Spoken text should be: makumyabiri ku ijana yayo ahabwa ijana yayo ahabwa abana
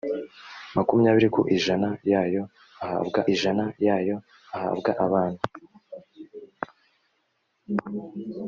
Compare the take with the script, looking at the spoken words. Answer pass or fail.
pass